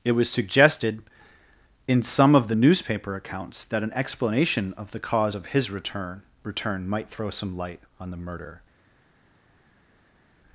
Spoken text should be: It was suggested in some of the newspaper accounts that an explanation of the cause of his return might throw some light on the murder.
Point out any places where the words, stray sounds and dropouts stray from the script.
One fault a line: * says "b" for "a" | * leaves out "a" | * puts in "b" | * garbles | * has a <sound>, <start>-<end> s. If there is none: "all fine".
* puts in "return"